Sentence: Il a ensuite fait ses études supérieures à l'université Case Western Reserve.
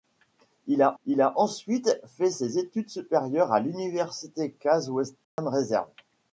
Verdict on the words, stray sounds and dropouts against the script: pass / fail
fail